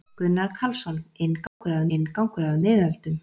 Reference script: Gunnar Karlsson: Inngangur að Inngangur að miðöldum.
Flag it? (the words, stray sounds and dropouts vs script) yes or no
yes